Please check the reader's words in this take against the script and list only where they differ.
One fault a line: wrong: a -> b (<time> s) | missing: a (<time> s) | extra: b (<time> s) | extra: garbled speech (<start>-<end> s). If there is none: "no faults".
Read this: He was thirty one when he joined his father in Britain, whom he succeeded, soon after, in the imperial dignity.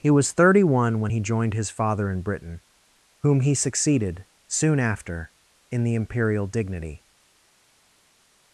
no faults